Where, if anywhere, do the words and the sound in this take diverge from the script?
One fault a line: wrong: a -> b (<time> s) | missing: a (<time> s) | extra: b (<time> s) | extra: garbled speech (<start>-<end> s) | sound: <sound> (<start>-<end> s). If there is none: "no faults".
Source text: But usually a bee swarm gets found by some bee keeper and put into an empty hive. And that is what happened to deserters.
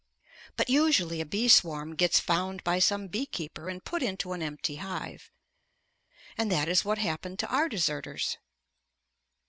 extra: our (7.5 s)